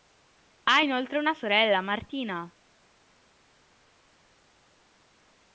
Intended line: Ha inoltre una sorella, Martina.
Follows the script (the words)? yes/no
yes